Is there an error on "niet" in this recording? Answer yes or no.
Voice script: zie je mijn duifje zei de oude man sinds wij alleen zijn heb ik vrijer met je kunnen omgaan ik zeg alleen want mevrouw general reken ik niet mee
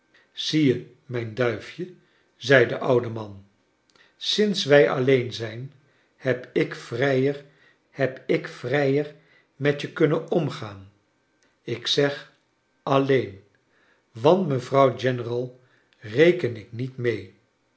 no